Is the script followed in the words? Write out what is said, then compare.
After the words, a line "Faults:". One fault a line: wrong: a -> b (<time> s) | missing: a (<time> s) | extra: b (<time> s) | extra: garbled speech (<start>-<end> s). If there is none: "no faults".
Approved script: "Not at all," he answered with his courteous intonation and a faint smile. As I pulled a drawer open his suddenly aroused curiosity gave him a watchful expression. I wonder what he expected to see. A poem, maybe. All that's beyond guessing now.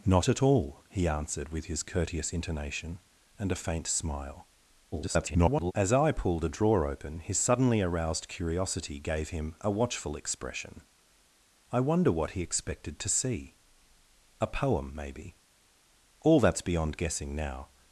"Not at all," he answered with his courteous intonation and a faint smile. [garbled] As I pulled a drawer open his suddenly aroused curiosity gave him a watchful expression. I wonder what he expected to see. A poem, maybe. All that's beyond guessing now.
Faults:
extra: garbled speech (4.9-5.7 s)